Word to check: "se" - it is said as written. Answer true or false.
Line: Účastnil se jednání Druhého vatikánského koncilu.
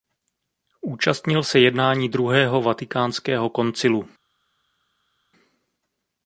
true